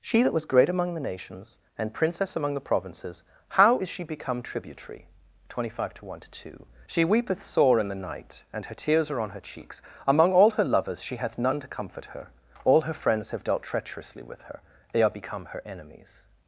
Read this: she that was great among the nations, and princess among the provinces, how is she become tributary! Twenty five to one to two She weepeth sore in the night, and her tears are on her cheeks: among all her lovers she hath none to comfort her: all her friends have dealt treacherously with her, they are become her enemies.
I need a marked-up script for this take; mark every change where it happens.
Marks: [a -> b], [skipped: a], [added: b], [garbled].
she that was great among the nations, and princess among the provinces, how is she become tributary! Twenty five to one to two She weepeth sore in the night, and her tears are on her cheeks: among all her lovers she hath none to comfort her: all her friends have dealt treacherously with her, they are become her enemies.